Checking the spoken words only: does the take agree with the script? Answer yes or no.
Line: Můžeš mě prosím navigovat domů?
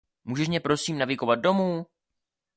yes